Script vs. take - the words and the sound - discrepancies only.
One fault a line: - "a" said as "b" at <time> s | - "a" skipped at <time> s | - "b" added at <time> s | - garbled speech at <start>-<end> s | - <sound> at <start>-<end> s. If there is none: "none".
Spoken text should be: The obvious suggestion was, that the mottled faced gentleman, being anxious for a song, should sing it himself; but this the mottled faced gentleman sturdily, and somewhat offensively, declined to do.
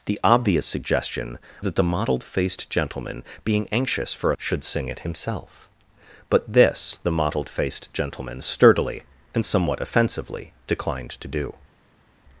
- "was" skipped at 1.4 s
- "song" skipped at 4.4 s